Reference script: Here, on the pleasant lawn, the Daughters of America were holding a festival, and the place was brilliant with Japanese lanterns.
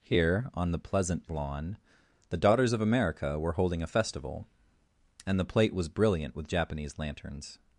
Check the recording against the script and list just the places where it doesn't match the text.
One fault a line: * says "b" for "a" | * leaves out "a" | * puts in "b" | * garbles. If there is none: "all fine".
* says "plate" for "place"